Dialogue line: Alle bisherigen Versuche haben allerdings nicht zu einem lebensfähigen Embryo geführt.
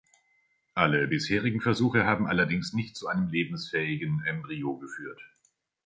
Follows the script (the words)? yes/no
yes